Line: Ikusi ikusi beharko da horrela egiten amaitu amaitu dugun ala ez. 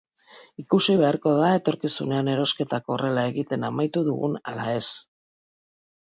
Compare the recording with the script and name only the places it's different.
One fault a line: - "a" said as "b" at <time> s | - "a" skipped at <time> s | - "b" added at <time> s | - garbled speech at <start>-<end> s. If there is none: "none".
- "ikusi" skipped at 0.9 s
- "etorkizunean erosketak" added at 1.5 s
- "amaitu" skipped at 4.0 s